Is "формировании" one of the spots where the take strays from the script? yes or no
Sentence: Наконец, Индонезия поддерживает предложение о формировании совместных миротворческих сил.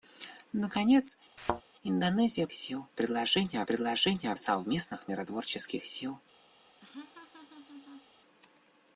yes